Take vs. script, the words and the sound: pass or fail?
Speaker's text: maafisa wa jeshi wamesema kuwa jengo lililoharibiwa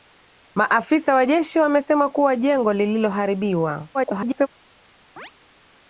fail